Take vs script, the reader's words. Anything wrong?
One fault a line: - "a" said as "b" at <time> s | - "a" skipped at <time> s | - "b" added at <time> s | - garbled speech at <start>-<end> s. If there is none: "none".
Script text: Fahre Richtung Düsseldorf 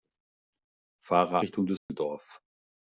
none